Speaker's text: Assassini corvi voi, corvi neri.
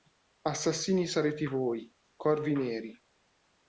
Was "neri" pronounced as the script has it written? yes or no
yes